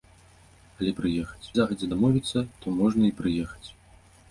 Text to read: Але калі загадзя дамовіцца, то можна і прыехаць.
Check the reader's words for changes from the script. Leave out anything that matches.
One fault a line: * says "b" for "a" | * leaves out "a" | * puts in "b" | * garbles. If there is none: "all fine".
* says "прыехаць" for "калі"